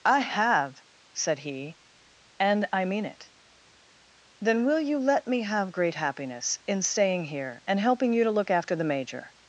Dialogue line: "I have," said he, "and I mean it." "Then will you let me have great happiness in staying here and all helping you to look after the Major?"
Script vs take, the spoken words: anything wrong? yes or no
yes